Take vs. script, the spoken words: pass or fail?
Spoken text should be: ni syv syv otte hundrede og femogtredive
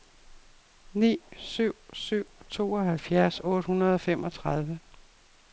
fail